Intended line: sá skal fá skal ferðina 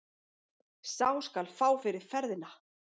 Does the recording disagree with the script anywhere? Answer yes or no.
yes